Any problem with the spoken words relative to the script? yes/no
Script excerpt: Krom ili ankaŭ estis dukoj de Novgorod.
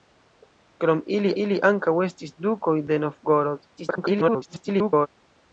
yes